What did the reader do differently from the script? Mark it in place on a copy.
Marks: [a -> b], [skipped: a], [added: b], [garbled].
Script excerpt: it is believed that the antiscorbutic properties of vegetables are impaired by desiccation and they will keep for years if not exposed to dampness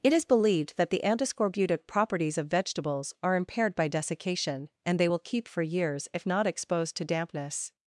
it is believed that the antiscorbutic properties of vegetables are impaired by desiccation and they will keep for years if not exposed to dampness